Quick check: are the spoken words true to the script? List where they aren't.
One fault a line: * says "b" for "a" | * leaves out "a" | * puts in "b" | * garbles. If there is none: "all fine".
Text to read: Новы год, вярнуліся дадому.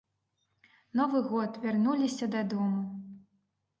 all fine